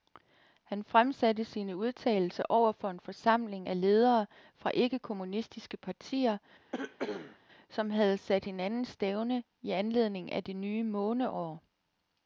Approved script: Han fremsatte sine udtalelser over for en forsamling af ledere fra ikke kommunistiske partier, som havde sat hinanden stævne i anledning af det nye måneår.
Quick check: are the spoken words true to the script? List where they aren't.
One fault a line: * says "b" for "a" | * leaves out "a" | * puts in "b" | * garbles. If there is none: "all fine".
all fine